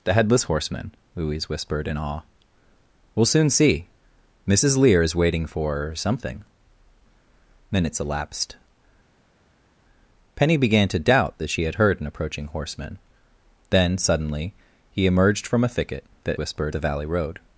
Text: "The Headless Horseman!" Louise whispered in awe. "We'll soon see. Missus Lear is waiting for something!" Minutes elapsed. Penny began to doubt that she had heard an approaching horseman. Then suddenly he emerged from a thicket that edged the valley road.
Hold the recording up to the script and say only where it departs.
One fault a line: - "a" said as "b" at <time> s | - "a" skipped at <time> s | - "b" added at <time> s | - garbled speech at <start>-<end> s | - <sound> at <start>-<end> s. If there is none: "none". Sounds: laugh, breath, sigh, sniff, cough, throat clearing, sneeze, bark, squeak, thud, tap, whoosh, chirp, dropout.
- "edged" said as "whispered" at 16.4 s